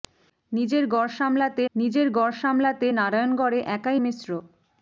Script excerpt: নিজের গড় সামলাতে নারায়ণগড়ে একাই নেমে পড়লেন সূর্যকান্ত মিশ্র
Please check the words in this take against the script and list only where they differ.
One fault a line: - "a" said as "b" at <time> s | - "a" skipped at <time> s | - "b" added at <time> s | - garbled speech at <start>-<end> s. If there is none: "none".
- "নারায়ণগড়ে একাই নেমে পড়লেন সূর্যকান্ত" said as "নিজের গড় সামলাতে নারায়ণগড়ে একাই" at 1.7 s